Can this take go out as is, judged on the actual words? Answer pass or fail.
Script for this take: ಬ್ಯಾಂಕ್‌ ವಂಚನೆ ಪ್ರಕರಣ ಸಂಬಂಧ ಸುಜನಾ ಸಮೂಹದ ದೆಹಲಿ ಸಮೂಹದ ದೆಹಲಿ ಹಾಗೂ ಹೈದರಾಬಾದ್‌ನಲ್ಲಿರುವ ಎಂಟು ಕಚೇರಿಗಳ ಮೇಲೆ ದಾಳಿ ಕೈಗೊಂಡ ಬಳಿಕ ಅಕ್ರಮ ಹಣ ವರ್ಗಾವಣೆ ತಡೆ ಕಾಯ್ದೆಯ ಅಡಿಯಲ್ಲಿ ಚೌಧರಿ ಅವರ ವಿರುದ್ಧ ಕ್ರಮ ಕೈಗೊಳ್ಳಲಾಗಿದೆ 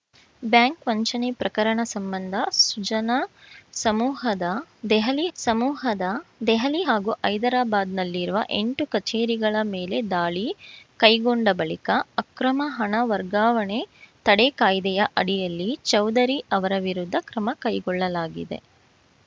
pass